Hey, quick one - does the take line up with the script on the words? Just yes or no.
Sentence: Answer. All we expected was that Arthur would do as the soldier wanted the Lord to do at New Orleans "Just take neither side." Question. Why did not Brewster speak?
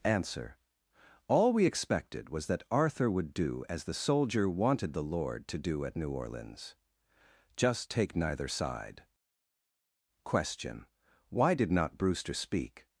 yes